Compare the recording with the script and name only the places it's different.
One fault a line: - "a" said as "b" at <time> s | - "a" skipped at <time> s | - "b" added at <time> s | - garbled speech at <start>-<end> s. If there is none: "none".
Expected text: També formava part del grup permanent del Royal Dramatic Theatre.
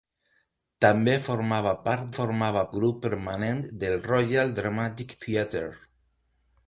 - "del" said as "formava" at 2.2 s